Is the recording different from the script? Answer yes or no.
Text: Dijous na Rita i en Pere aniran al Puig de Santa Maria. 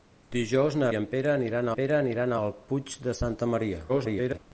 yes